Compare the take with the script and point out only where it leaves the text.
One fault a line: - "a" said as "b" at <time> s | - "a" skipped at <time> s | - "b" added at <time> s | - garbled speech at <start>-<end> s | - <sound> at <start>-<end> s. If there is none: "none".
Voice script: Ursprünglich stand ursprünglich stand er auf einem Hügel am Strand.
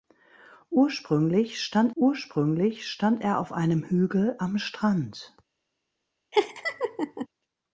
- laugh at 6.3-7.3 s